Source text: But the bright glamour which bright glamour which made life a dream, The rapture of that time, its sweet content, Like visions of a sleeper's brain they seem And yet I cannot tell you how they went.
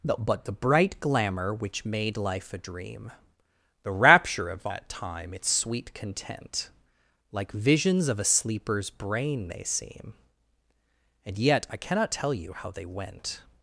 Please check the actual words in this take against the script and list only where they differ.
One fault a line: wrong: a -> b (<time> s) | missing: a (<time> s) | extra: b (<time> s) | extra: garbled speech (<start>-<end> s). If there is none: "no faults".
missing: bright glamour which (1.9 s)